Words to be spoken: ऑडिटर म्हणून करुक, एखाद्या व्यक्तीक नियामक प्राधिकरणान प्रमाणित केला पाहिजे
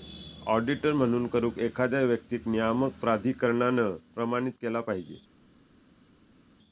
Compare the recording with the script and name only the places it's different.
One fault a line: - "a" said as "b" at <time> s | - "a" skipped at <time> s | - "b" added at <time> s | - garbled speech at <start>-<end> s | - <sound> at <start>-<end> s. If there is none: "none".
none